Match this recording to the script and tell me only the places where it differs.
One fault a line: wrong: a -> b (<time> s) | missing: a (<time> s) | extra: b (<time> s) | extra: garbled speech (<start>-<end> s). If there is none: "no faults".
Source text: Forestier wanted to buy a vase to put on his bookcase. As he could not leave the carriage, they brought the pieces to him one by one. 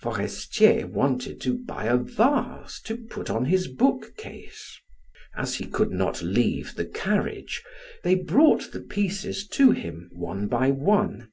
no faults